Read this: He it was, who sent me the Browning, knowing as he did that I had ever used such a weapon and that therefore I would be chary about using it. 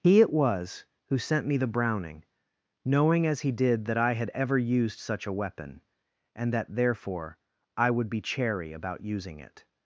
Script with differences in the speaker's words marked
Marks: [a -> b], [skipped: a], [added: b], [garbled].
He it was, who sent me the Browning, knowing as he did that I had ever used such a weapon and that therefore I would be chary about using it.